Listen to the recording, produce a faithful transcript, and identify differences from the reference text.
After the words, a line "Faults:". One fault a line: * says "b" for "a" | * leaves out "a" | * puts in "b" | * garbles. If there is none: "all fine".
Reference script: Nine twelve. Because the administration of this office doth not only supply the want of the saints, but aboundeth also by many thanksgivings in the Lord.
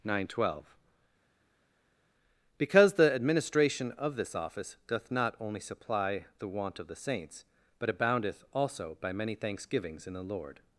Nine twelve. Because the administration of this office doth not only supply the want of the saints, but aboundeth also by many thanksgivings in the Lord.
Faults:
all fine